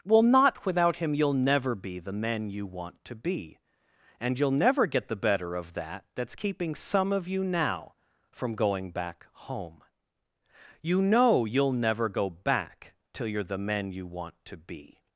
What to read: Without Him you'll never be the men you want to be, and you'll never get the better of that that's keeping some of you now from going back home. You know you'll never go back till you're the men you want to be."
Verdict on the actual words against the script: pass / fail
fail